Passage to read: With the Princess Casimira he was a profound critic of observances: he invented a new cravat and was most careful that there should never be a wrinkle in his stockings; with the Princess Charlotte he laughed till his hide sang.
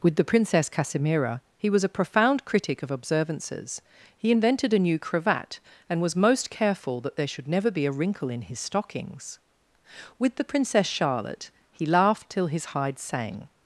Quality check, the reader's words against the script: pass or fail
pass